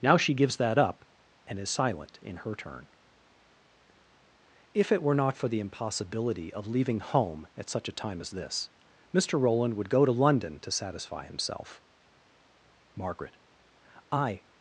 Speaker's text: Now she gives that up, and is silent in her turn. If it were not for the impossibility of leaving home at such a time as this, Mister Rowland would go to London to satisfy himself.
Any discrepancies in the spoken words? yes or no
yes